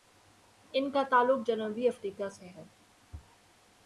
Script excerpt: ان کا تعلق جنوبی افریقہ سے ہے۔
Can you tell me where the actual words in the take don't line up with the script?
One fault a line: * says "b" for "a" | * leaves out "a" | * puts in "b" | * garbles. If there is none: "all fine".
all fine